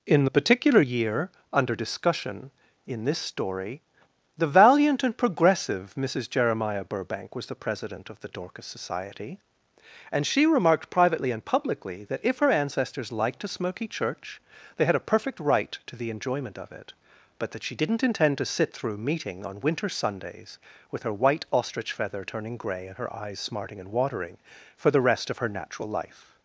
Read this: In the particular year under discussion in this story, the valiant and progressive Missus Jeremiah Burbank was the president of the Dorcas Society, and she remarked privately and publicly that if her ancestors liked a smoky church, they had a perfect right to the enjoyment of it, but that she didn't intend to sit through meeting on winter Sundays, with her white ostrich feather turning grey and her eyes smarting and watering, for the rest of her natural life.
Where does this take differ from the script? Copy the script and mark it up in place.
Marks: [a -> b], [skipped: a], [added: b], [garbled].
In the particular year under discussion in this story, the valiant and progressive Missus Jeremiah Burbank was the president of the Dorcas Society, and she remarked privately and publicly that if her ancestors liked a smoky church, they had a perfect right to the enjoyment of it, but that she didn't intend to sit through meeting on winter Sundays, with her white ostrich feather turning grey and her eyes smarting and watering, for the rest of her natural life.